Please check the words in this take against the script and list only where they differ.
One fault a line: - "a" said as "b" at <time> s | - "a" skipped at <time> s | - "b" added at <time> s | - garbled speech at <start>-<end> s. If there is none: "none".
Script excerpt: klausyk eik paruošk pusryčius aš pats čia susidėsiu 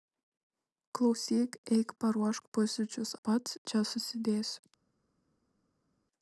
- "aš" skipped at 3.1 s